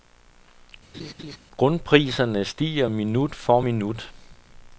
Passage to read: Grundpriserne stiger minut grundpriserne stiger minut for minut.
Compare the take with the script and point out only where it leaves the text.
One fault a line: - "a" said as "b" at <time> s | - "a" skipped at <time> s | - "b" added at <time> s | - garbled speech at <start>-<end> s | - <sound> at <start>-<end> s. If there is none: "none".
- laugh at 0.9-1.4 s
- "grundpriserne stiger minut" skipped at 3.4 s